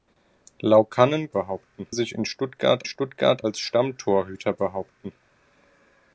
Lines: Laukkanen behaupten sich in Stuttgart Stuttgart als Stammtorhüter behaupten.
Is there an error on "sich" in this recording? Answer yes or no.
no